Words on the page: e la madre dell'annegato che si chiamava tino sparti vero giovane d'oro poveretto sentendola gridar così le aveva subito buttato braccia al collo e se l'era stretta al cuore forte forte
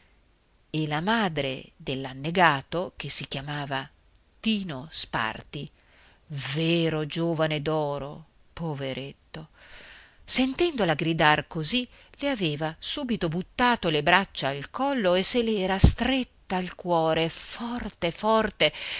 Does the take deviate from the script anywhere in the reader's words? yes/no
yes